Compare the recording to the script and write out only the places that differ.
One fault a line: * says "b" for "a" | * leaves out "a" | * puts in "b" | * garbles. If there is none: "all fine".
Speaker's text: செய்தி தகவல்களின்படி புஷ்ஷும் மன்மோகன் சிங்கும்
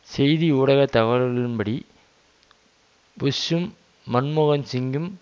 * puts in "ஊடக"